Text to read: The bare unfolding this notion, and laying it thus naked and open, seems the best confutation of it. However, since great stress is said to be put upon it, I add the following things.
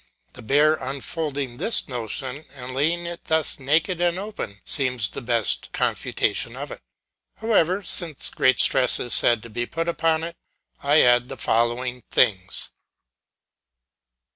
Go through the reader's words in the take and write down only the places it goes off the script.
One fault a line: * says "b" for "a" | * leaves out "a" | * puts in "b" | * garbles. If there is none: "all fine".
all fine